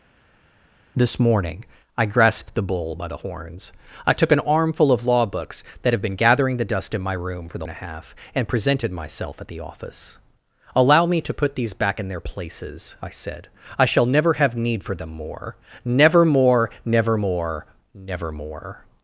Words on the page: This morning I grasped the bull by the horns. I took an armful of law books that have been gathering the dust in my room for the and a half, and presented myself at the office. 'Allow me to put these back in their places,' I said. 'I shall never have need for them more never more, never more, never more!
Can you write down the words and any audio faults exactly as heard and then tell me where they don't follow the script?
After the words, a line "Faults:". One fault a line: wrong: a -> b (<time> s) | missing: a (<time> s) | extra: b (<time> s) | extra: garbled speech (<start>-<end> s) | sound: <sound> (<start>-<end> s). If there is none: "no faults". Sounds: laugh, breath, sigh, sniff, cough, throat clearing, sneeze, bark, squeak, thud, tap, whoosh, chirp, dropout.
This morning I grasped the bull by the horns. I took an armful of law books that have been gathering the dust in my room for the and a half, and presented myself at the office. 'Allow me to put these back in their places,' I said. 'I shall never have need for them more never more, never more, never more!
Faults:
no faults